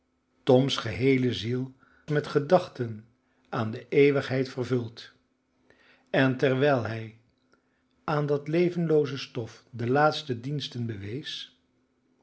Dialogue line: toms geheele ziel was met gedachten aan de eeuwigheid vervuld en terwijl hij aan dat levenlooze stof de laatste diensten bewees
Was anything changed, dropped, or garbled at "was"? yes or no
yes